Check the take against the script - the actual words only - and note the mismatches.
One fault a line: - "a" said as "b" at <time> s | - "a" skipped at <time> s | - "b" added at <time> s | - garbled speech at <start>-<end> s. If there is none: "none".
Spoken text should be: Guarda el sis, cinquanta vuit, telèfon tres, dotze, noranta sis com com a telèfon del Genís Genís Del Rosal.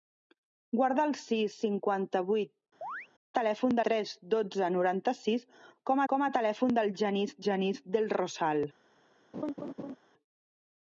none